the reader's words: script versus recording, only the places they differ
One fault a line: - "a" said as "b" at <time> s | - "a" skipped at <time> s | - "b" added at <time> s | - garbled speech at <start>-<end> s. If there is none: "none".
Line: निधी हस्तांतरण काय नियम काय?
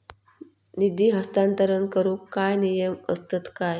- "करूक" added at 1.9 s
- "असतत" added at 3.1 s